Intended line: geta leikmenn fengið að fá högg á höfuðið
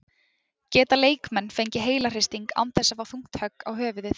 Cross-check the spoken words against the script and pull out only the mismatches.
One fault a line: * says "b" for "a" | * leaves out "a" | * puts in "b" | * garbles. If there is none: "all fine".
* puts in "heilahristing án þess"
* puts in "þungt"